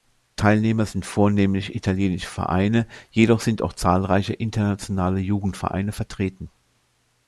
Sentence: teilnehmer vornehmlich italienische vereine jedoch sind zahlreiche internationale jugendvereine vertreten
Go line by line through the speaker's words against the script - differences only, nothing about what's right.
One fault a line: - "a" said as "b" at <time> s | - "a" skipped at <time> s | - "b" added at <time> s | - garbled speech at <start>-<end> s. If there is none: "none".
- "sind" added at 0.9 s
- "auch" added at 3.6 s